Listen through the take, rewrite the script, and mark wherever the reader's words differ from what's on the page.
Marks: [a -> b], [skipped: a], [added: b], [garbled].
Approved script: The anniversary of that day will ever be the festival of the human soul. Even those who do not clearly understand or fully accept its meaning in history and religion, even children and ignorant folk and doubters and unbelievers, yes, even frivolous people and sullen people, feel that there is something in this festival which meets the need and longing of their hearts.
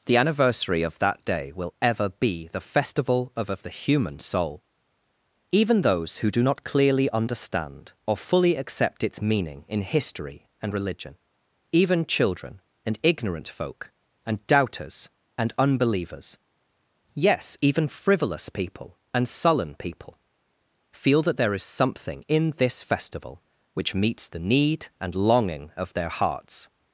The anniversary of that day will ever be the festival of [added: of] the human soul. Even those who do not clearly understand or fully accept its meaning in history and religion, even children and ignorant folk and doubters and unbelievers, yes, even frivolous people and sullen people, feel that there is something in this festival which meets the need and longing of their hearts.